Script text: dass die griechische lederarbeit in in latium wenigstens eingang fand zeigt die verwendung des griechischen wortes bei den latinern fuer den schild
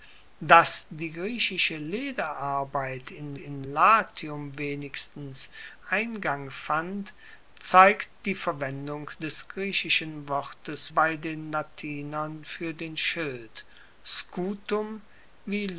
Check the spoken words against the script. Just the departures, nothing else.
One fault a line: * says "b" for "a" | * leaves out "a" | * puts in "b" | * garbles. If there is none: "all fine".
all fine